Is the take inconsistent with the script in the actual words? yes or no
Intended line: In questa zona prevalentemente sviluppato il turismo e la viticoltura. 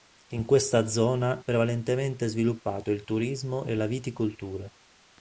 no